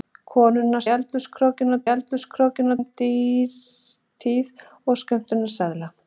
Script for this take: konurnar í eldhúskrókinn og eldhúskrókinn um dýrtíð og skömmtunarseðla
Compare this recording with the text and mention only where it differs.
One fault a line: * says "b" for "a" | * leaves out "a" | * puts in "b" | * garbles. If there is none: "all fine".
all fine